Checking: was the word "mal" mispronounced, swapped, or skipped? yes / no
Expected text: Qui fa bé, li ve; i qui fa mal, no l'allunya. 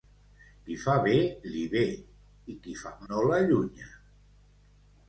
yes